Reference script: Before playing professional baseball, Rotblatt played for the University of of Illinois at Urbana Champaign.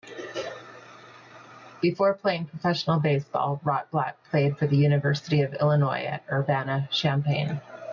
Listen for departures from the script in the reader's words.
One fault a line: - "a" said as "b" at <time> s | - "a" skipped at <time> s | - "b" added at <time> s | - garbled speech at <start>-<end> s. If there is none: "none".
- "of" skipped at 5.5 s